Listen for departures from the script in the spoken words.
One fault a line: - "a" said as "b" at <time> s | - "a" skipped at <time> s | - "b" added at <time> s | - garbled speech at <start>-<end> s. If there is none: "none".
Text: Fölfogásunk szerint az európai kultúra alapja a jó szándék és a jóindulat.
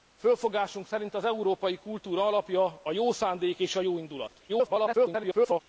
- garbled speech at 4.5-5.6 s